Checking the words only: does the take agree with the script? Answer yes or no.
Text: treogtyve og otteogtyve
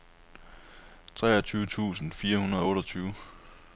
no